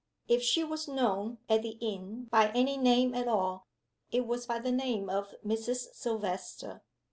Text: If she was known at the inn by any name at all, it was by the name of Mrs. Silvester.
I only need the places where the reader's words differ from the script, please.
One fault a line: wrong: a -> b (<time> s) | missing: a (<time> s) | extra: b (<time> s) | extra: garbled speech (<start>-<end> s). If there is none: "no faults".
no faults